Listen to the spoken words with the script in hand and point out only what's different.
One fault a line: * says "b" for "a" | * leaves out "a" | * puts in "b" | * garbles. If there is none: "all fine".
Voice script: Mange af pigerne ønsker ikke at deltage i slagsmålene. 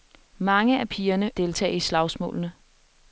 * leaves out "ønsker ikke at"